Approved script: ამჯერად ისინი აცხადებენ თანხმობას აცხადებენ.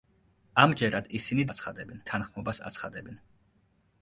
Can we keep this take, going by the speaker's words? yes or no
yes